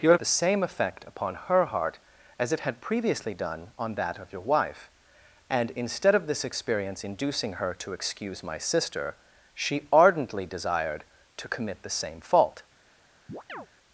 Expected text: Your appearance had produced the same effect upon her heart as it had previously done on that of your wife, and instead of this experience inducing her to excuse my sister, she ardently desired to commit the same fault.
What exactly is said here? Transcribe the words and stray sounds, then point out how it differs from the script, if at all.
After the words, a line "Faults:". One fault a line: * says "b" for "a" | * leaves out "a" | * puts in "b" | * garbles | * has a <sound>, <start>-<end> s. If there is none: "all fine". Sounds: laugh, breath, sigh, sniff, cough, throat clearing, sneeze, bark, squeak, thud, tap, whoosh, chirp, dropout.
Your the same effect upon her heart as it had previously done on that of your wife, and instead of this experience inducing her to excuse my sister, she ardently desired to commit the same fault.
Faults:
* leaves out "appearance had produced"
* has a chirp, 13.3-13.7 s